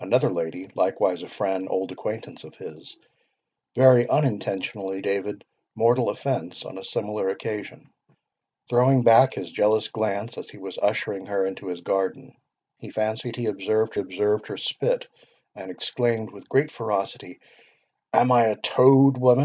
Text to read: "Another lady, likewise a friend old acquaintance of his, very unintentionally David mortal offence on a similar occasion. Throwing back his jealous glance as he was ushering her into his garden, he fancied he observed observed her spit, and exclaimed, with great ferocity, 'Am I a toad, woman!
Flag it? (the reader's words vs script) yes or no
no